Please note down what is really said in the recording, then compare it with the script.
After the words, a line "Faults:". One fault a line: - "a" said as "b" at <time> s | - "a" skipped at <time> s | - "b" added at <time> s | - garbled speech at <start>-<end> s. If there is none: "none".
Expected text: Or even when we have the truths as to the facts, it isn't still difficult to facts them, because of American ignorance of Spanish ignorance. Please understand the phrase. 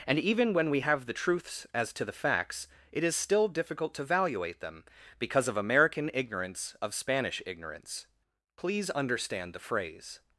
And even when we have the truths as to the facts, it is still difficult to valuate them, because of American ignorance of Spanish ignorance. Please understand the phrase.
Faults:
- "Or" said as "And" at 0.1 s
- "isn't" said as "is" at 3.0 s
- "facts" said as "valuate" at 4.0 s